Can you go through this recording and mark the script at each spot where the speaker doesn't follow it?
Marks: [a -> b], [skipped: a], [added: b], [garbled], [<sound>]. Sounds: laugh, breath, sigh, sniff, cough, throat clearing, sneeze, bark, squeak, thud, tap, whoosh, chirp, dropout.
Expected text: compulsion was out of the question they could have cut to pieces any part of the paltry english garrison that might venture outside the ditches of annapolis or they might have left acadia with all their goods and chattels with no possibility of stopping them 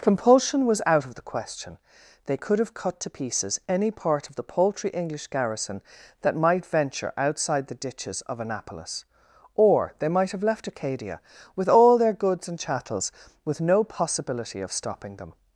compulsion was out of the question they could have cut to pieces any part of the paltry english garrison that might venture outside the ditches of annapolis or they might have left acadia with all their goods and chattels with no possibility of stopping them